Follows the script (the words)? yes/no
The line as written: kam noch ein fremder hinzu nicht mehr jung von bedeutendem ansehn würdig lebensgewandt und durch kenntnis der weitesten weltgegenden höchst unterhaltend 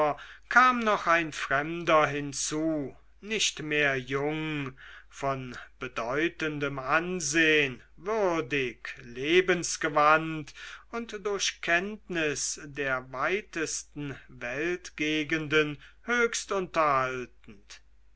yes